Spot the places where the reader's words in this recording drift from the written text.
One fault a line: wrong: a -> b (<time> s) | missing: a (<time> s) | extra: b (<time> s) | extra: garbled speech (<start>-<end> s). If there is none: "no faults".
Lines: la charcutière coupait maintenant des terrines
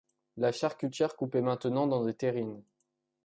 extra: dans (1.9 s)